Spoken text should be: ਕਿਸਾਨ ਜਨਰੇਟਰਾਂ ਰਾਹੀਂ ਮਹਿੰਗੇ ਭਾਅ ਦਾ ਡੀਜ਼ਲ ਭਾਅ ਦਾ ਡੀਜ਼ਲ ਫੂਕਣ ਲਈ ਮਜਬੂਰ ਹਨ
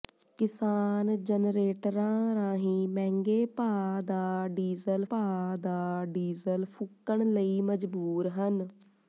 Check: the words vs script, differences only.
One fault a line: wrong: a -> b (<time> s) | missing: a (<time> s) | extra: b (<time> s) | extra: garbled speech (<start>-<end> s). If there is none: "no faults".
no faults